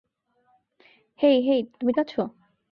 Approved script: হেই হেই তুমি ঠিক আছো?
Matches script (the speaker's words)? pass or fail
fail